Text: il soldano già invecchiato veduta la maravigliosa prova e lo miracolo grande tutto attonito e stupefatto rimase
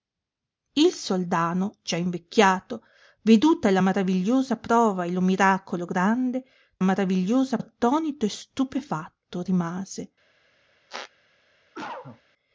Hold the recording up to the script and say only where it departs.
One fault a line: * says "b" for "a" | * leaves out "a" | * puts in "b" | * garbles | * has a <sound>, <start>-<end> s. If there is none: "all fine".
* says "maravigliosa" for "tutto"
* has a squeak, 10.9-11.1 s
* has a cough, 11.7-12.2 s